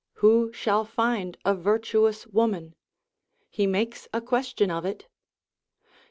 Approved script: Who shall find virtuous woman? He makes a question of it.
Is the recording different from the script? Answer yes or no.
yes